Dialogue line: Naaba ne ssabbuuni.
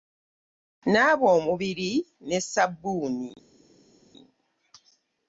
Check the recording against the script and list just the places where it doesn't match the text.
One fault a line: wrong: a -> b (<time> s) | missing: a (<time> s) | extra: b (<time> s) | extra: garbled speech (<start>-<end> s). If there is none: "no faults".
extra: omubiri (1.4 s)